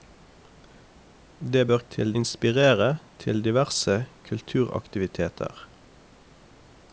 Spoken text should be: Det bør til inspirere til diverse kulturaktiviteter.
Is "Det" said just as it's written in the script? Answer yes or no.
yes